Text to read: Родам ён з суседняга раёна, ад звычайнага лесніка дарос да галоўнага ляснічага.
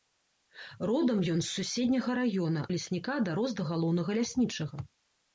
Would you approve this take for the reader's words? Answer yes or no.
no